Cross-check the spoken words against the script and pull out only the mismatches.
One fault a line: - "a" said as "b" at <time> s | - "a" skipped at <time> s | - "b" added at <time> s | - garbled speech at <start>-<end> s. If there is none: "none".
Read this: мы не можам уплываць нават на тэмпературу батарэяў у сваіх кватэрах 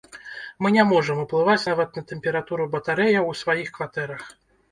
none